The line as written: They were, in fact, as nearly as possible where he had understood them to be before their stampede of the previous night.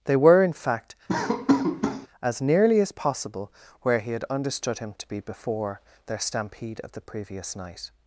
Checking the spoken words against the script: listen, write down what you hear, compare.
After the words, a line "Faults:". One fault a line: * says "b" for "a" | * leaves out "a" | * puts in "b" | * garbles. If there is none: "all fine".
They were, in fact, as nearly as possible where he had understood him to be before their stampede of the previous night.
Faults:
* says "him" for "them"